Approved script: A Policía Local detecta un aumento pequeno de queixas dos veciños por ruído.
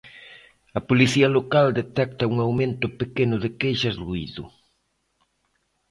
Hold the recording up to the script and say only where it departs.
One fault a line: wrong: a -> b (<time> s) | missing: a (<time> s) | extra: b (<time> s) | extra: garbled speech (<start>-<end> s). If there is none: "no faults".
missing: dos veciños por (4.0 s)